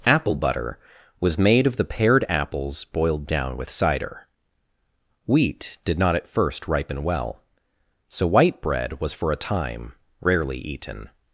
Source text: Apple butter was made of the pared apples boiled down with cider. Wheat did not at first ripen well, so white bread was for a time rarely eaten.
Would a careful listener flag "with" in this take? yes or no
no